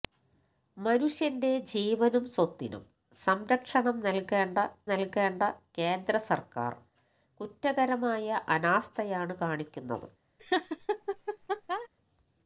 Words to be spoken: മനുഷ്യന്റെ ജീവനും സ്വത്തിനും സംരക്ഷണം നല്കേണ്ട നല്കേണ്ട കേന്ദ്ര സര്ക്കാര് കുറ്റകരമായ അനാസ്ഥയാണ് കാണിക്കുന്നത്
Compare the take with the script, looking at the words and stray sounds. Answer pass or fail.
fail